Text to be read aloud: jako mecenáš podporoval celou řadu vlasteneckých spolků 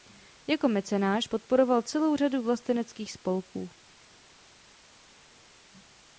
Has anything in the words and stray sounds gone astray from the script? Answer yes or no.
no